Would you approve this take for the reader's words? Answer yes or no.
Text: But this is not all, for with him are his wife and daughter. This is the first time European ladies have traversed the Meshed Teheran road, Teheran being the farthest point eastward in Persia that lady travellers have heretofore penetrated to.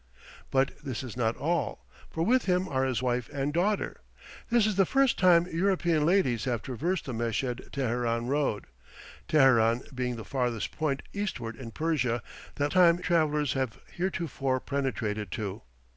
no